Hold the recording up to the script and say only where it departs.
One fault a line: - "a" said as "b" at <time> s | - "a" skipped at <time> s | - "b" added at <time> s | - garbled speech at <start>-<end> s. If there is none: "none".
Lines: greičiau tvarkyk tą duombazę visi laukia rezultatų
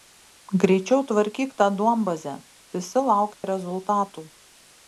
none